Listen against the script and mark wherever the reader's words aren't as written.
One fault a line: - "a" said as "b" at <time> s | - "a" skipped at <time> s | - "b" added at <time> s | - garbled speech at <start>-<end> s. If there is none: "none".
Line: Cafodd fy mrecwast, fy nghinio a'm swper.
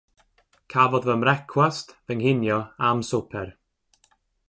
none